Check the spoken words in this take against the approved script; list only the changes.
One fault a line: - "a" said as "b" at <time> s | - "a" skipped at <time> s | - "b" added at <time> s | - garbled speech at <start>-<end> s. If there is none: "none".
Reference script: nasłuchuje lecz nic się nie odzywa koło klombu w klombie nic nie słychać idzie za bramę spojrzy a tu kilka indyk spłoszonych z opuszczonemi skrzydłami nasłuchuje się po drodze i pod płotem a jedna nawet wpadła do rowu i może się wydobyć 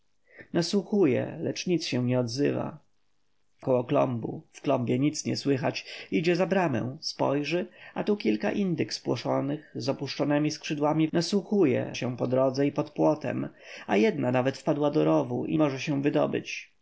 none